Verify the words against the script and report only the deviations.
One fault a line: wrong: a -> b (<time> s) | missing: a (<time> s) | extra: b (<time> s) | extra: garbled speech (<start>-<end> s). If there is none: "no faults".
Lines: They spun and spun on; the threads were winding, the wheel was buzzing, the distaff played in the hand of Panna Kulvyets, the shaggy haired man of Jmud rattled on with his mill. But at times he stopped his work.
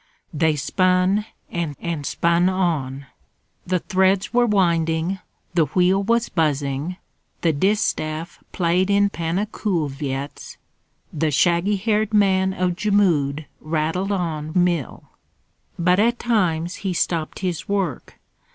extra: and (1.8 s)
missing: the hand of (9.1 s)
missing: with his (14.6 s)